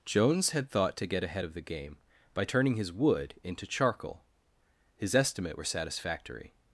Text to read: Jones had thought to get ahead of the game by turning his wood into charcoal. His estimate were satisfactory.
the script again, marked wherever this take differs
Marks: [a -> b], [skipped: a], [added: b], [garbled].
Jones had thought to get ahead of the game by turning his wood into charcoal. His estimate were satisfactory.